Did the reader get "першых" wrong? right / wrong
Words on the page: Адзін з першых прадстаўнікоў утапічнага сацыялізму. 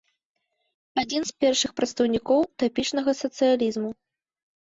right